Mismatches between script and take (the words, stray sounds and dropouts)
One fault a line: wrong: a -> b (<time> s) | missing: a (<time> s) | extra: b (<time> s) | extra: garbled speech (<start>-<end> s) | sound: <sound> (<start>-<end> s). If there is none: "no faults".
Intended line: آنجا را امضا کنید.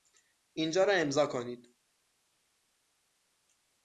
wrong: آنجا -> اینجا (0.5 s)